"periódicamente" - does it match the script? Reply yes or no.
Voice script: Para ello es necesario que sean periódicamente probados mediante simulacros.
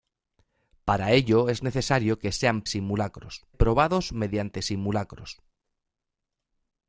no